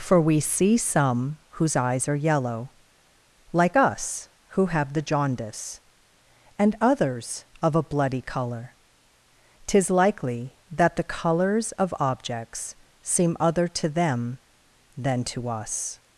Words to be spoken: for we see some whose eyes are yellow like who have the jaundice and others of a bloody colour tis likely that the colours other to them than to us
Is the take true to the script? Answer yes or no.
no